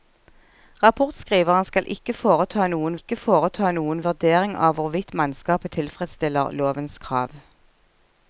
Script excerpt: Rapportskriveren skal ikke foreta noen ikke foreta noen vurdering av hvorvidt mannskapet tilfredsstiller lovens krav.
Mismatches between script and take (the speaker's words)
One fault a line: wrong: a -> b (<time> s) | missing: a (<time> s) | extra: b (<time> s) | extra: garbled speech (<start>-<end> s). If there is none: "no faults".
no faults